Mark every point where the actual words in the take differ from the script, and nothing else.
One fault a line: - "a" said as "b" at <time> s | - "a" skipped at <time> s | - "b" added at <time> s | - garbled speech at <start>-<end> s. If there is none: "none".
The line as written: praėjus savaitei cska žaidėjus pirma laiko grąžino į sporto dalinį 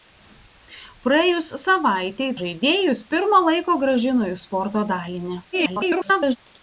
- "cska" skipped at 2.3 s
- garbled speech at 5.5-6.4 s